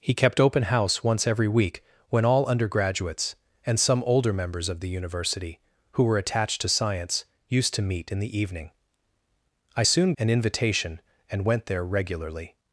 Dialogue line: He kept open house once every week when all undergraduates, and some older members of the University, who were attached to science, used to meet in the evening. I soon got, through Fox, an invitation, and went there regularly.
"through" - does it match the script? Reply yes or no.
no